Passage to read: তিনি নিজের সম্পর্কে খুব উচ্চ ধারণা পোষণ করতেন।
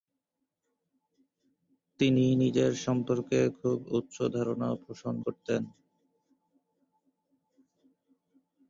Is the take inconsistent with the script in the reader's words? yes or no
no